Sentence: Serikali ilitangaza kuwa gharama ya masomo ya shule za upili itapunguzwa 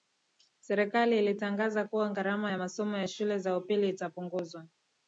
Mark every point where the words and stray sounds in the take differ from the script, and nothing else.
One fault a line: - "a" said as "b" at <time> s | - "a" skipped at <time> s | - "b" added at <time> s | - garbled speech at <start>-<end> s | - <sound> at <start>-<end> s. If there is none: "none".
none